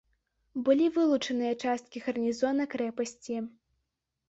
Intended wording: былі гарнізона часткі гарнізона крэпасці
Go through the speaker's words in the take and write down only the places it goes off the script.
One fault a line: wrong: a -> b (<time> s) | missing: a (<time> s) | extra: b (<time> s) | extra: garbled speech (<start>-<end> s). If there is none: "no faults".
wrong: гарнізона -> вылучаныя (0.9 s)